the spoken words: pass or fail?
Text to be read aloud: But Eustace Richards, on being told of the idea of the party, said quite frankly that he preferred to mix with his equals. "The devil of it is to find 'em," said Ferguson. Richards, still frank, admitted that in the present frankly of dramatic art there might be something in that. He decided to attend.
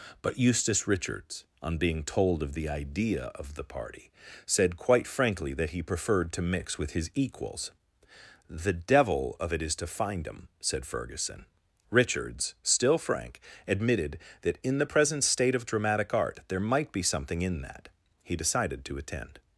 fail